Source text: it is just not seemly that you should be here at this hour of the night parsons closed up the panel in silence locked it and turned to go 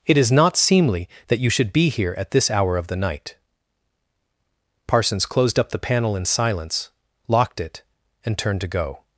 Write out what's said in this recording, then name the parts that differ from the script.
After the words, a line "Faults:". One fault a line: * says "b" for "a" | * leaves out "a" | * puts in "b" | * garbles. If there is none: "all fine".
it is not seemly that you should be here at this hour of the night parsons closed up the panel in silence locked it and turned to go
Faults:
* leaves out "just"